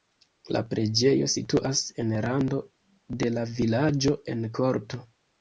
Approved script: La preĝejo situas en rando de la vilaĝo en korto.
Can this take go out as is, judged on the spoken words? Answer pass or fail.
pass